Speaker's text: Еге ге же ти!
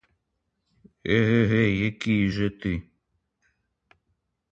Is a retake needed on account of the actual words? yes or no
yes